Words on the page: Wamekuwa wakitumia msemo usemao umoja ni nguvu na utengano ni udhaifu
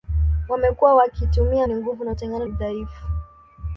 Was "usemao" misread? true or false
true